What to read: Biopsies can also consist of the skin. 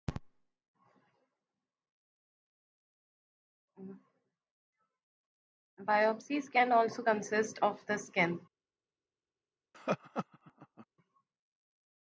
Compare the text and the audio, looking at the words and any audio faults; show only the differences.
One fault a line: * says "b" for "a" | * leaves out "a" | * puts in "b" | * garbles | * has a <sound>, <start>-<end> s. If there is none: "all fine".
* has a laugh, 9.7-10.9 s